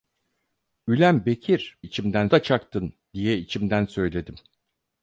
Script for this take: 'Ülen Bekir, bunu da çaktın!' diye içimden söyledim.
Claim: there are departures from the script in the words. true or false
true